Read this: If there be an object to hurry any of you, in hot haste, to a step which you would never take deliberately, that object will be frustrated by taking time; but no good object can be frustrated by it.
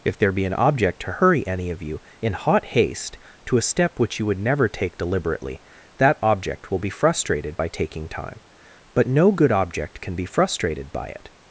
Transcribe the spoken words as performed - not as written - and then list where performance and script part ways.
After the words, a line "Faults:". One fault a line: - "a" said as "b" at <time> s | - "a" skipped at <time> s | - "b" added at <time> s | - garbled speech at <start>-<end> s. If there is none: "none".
If there be an object to hurry any of you, in hot haste, to a step which you would never take deliberately, that object will be frustrated by taking time; but no good object can be frustrated by it.
Faults:
none